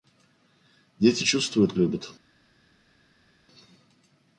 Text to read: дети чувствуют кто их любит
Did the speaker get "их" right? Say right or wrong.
wrong